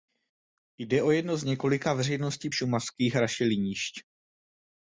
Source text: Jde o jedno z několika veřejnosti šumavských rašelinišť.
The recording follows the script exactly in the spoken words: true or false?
true